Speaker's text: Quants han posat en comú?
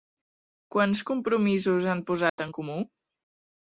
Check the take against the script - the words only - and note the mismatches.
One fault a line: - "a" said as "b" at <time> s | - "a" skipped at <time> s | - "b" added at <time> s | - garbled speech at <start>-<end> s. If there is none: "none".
- "compromisos" added at 1.1 s